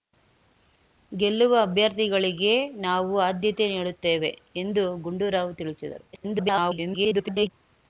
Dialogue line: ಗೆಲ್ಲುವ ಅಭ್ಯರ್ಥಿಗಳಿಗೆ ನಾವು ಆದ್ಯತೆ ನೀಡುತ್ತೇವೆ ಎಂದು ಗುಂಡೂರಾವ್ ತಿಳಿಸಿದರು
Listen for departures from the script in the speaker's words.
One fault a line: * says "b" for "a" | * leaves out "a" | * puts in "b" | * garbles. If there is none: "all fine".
* garbles